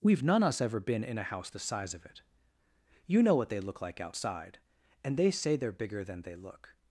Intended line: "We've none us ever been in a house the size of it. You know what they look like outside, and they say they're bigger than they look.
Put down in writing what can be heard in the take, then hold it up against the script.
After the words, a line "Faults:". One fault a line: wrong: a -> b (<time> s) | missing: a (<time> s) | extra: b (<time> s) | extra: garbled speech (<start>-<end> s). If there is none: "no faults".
"We've none us ever been in a house the size of it. You know what they look like outside, and they say they're bigger than they look.
Faults:
no faults